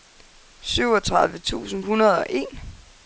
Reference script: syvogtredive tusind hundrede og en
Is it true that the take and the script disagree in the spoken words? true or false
false